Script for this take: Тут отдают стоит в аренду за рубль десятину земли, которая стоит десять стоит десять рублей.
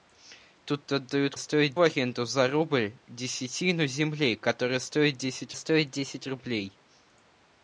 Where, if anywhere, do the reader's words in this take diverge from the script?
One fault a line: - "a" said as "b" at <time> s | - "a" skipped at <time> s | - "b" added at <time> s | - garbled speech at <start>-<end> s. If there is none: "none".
none